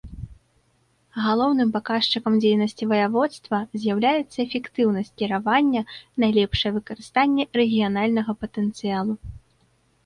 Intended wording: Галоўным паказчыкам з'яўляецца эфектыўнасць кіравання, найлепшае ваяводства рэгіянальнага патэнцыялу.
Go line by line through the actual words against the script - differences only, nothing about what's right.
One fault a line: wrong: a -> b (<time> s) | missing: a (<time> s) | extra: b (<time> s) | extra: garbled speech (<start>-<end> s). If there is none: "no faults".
extra: дзейнасці ваяводства (2.5 s)
wrong: ваяводства -> выкарыстанне (6.8 s)